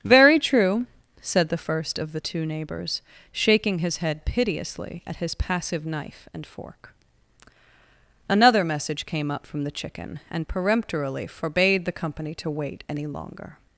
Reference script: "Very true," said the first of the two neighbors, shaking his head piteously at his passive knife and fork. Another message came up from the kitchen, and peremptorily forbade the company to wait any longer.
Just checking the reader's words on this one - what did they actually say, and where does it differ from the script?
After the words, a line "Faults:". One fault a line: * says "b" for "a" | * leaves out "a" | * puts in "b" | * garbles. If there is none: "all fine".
"Very true," said the first of the two neighbors, shaking his head piteously at his passive knife and fork. Another message came up from the chicken, and peremptorily forbade the company to wait any longer.
Faults:
* says "chicken" for "kitchen"